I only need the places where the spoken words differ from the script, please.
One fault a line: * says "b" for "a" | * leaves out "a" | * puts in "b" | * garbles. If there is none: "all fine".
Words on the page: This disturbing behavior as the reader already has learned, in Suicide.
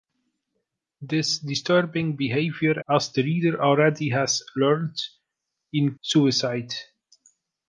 all fine